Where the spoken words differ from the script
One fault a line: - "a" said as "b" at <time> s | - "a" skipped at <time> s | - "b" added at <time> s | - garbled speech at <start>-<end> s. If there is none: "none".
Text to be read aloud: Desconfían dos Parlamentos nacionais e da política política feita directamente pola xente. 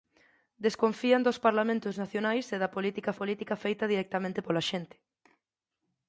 none